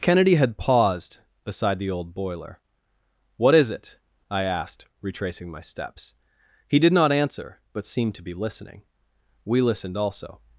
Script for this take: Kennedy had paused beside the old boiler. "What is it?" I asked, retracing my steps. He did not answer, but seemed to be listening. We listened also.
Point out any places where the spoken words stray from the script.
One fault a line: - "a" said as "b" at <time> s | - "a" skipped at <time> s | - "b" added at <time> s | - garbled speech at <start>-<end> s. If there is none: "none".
none